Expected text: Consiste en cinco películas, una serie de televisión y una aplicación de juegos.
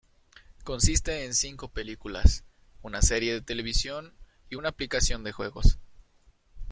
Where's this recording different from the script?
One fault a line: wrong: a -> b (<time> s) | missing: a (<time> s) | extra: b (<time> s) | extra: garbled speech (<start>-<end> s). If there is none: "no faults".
no faults